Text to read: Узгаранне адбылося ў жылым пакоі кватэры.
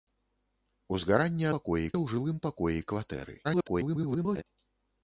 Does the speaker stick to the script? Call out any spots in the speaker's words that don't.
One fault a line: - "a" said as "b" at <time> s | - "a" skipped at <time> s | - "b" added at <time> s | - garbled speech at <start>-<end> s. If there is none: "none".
- "адбылося" said as "пакоі" at 1.6 s
- garbled speech at 3.4-4.4 s